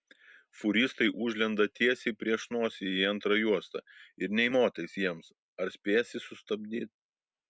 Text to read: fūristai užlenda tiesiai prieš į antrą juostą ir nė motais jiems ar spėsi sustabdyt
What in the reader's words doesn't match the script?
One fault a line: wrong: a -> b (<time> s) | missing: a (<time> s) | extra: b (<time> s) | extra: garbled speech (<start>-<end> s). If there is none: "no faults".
extra: nosį (2.5 s)